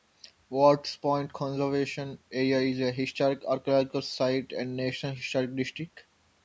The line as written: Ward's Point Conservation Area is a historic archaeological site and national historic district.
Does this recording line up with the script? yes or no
yes